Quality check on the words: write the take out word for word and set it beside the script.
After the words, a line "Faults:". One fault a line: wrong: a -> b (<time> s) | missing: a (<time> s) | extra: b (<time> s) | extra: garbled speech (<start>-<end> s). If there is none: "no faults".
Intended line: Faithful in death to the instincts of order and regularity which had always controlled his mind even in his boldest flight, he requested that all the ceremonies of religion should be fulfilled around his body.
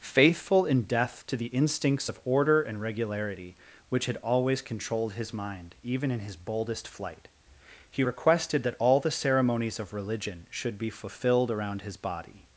Faithful in death to the instincts of order and regularity which had always controlled his mind even in his boldest flight, he requested that all the ceremonies of religion should be fulfilled around his body.
Faults:
no faults